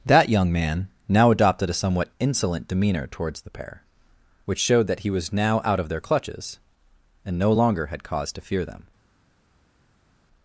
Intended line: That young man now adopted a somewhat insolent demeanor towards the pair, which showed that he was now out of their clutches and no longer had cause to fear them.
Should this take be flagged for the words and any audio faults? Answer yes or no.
no